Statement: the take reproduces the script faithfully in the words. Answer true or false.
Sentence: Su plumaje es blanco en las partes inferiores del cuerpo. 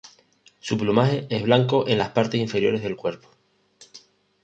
true